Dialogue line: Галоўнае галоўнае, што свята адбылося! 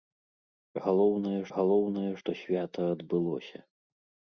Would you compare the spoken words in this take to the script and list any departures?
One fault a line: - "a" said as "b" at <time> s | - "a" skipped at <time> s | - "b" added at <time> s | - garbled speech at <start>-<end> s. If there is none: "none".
none